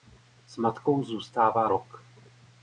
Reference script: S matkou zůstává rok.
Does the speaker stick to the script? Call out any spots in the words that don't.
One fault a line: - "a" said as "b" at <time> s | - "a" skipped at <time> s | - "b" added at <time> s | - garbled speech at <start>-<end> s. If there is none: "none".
none